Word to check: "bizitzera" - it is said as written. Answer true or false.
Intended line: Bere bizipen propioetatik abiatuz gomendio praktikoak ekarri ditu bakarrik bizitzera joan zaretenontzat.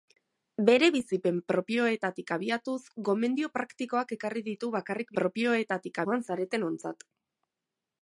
false